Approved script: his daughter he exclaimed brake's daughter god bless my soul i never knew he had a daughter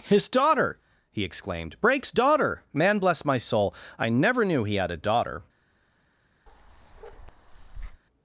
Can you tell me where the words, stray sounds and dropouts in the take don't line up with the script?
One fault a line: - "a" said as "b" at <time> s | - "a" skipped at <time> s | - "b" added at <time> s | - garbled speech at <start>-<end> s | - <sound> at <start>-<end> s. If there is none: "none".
- "god" said as "man" at 2.7 s
- bark at 6.5-8.0 s